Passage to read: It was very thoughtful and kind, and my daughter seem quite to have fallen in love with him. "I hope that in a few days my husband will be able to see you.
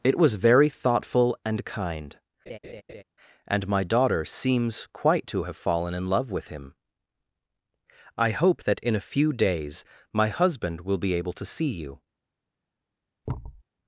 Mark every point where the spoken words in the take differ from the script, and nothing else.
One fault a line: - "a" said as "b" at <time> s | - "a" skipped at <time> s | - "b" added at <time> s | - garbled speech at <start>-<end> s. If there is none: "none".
- "seem" said as "seems" at 4.3 s